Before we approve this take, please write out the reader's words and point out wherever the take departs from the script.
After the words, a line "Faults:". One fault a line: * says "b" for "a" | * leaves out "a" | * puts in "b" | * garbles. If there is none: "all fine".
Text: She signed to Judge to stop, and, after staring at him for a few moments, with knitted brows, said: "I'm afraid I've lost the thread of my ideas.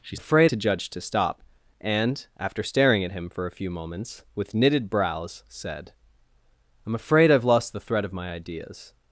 She afraid to Judge to stop, and, after staring at him for a few moments, with knitted brows, said: "I'm afraid I've lost the thread of my ideas.
Faults:
* says "afraid" for "signed"